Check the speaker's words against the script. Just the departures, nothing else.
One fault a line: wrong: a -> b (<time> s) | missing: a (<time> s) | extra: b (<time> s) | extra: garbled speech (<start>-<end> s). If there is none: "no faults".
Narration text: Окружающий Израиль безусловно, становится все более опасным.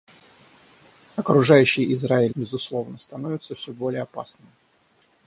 no faults